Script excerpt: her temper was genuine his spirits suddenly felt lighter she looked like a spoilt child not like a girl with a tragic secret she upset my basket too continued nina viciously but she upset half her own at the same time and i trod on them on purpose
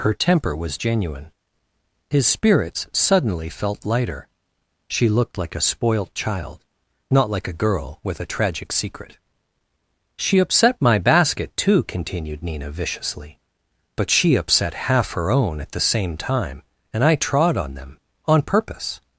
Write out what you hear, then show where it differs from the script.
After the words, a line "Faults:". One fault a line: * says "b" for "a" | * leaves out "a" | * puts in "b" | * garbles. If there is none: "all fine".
her temper was genuine his spirits suddenly felt lighter she looked like a spoilt child not like a girl with a tragic secret she upset my basket too continued nina viciously but she upset half her own at the same time and i trod on them on purpose
Faults:
all fine